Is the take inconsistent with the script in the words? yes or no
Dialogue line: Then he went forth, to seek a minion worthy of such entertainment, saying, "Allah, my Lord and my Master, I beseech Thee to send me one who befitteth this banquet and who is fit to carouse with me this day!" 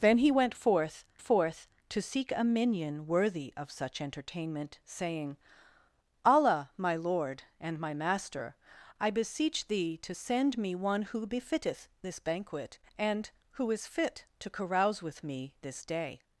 yes